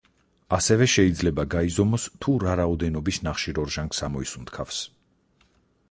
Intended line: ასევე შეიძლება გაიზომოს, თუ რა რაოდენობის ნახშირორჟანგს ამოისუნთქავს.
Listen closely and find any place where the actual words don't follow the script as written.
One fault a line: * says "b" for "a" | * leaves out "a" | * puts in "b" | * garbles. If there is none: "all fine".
all fine